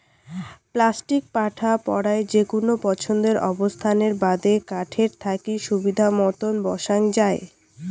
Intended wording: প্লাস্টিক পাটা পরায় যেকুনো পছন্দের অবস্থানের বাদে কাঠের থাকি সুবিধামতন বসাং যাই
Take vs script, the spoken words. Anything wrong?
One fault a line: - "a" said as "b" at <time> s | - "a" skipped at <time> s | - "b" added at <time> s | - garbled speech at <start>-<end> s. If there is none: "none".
none